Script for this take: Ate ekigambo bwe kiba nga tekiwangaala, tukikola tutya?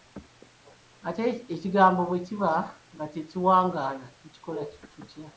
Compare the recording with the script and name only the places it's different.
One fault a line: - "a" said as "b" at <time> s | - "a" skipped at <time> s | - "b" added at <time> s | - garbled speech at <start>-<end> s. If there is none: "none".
none